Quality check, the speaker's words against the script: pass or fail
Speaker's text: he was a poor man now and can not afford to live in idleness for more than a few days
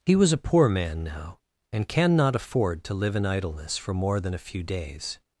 pass